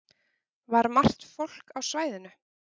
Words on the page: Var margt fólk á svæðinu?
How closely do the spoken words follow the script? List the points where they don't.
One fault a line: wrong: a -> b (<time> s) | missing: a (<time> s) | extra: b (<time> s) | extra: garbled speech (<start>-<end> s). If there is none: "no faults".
no faults